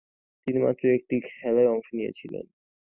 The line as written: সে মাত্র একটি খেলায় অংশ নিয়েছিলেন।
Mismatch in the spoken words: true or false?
true